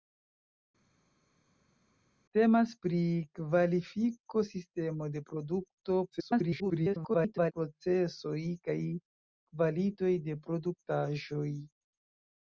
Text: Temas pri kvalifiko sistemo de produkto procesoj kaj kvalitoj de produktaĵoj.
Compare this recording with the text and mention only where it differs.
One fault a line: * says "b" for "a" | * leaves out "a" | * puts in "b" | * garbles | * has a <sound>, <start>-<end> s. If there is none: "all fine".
* garbles